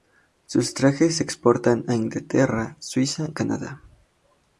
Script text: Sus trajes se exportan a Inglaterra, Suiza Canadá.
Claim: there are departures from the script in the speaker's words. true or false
false